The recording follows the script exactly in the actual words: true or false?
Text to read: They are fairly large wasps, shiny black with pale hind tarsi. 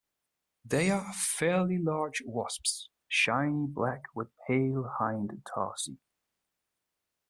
true